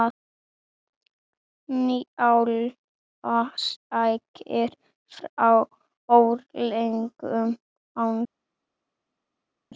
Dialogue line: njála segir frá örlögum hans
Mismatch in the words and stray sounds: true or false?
false